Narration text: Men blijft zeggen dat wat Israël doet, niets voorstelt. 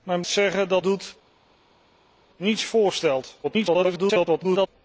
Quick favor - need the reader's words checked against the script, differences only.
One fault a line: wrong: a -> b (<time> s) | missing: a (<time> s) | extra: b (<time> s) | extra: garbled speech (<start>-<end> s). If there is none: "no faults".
missing: blijft (0.2 s)
missing: wat Israël (0.8 s)
extra: garbled speech (3.4-4.7 s)